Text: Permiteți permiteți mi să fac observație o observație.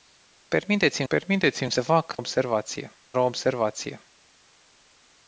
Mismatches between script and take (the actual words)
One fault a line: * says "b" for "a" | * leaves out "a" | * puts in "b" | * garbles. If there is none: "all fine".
all fine